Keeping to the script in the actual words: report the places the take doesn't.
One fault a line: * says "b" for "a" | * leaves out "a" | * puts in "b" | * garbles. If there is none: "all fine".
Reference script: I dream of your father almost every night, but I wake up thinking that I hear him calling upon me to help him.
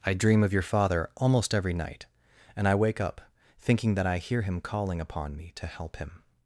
* says "and" for "but"